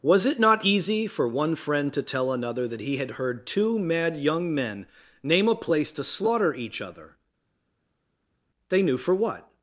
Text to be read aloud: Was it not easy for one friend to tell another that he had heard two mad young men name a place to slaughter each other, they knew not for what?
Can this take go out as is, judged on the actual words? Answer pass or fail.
fail